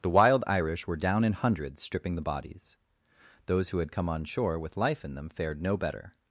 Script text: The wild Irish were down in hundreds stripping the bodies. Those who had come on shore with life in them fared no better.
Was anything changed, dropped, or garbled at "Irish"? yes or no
no